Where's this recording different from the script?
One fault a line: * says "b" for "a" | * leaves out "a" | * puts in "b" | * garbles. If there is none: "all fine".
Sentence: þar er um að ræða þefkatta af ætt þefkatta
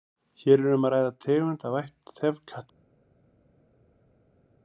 * says "hér" for "þar"
* says "tegund" for "þefkatta"